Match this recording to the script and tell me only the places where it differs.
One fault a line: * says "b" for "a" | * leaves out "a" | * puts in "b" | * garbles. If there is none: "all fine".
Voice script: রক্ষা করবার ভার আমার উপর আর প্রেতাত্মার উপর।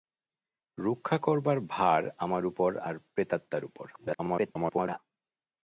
* garbles